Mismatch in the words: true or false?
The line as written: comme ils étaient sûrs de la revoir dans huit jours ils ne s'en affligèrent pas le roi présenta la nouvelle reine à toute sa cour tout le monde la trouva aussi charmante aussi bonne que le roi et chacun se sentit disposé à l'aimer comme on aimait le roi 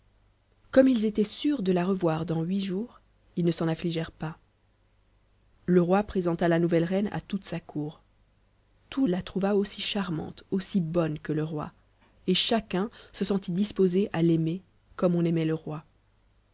true